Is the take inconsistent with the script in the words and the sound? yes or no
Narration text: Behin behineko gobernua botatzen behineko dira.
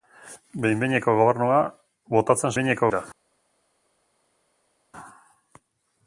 no